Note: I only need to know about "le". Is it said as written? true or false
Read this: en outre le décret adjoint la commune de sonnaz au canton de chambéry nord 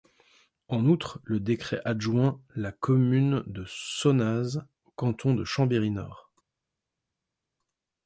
true